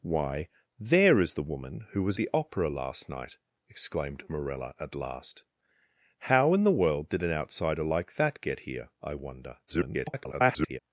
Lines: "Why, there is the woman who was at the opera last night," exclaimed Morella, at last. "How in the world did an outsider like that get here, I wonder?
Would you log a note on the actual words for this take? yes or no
yes